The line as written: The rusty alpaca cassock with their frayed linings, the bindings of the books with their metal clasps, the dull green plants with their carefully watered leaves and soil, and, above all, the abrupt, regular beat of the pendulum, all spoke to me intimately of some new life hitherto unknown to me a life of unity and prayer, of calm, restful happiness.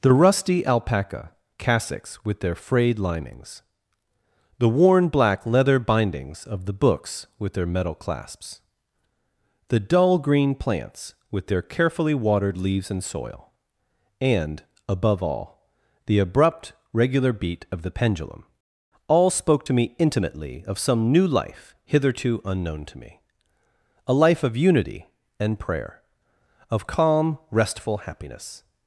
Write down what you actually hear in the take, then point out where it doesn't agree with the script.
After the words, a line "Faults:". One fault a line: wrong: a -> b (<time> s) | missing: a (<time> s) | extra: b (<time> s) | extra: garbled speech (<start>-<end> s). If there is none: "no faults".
The rusty alpaca cassocks with their frayed linings, the worn black leather bindings of the books with their metal clasps, the dull green plants with their carefully watered leaves and soil, and, above all, the abrupt, regular beat of the pendulum, all spoke to me intimately of some new life hitherto unknown to me a life of unity and prayer, of calm, restful happiness.
Faults:
wrong: cassock -> cassocks (1.6 s)
extra: worn black leather (4.7 s)